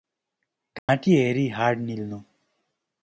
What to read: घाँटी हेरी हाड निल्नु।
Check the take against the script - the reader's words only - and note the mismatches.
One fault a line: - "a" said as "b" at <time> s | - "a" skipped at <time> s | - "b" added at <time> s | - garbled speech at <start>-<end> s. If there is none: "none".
none